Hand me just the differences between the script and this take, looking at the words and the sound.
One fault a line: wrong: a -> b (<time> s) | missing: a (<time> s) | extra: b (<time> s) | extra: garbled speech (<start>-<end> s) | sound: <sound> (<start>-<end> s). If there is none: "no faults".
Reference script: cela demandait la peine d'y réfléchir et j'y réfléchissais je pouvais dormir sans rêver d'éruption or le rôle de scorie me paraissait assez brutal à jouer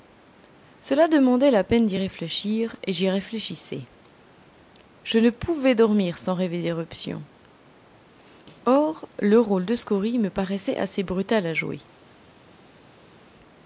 extra: ne (5.2 s)